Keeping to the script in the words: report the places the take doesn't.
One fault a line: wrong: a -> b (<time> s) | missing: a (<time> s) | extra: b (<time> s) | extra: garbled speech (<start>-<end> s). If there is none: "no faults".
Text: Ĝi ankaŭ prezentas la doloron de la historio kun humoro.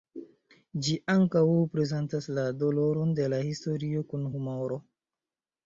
no faults